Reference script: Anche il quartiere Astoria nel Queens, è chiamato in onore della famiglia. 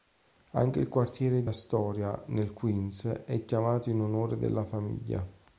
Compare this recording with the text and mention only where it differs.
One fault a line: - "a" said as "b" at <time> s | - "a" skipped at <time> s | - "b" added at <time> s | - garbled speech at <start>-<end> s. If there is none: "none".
none